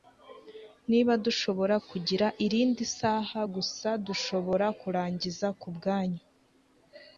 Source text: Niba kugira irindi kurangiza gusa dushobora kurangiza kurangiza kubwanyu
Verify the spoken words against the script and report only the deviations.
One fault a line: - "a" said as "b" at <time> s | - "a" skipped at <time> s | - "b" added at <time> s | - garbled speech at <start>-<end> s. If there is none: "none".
- "dushobora" added at 1.2 s
- "kurangiza" said as "saha" at 3.0 s
- "kurangiza" skipped at 5.5 s